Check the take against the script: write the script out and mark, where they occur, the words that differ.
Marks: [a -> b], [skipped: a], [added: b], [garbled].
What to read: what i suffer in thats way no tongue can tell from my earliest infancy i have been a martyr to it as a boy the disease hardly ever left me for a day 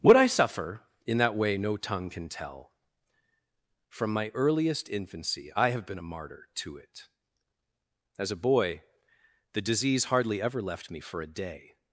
what i suffer in [thats -> that] way no tongue can tell from my earliest infancy i have been a martyr to it as a boy the disease hardly ever left me for a day